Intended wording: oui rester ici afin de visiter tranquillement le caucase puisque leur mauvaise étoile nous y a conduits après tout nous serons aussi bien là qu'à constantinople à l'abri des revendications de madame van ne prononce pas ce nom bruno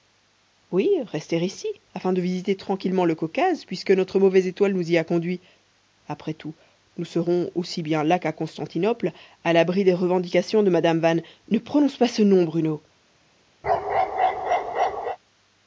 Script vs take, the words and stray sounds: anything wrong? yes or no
yes